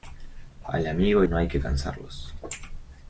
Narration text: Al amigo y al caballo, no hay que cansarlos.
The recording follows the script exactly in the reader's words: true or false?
false